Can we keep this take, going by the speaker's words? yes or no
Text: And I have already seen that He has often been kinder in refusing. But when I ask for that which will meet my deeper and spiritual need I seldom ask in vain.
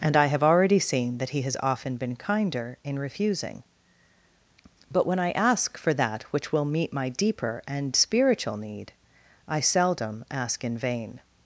yes